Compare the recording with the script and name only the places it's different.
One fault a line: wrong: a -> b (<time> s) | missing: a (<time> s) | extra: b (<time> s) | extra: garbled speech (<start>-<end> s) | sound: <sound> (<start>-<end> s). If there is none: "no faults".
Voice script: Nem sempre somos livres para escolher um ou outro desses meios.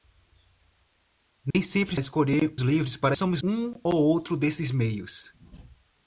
sound: dropout (1.5-1.5 s)
wrong: somos -> escolher (2.0 s)
wrong: escolher -> somos (3.1 s)